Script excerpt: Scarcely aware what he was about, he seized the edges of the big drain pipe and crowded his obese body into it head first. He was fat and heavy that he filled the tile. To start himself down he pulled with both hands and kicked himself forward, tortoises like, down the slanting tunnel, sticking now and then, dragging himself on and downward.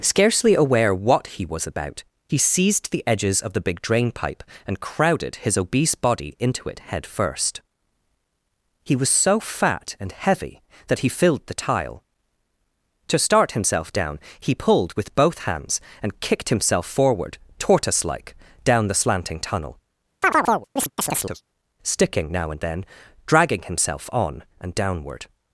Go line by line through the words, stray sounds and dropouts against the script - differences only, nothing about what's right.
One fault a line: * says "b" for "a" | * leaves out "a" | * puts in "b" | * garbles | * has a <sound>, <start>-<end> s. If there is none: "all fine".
* puts in "so"
* says "tortoise" for "tortoises"
* has a chirp, 20.2-21.4 s